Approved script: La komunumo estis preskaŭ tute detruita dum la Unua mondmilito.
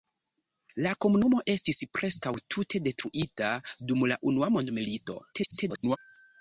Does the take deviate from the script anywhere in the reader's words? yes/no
yes